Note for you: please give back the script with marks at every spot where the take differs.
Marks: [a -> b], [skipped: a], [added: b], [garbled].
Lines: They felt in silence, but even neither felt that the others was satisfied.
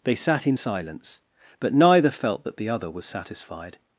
They [felt -> sat] in silence, but [skipped: even] neither felt that the [others -> other] was satisfied.